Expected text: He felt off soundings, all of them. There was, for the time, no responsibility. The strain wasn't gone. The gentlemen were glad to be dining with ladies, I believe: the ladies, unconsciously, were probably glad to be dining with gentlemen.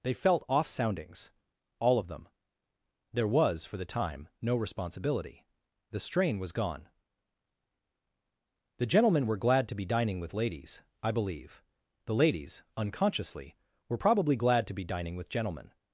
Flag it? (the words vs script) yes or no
yes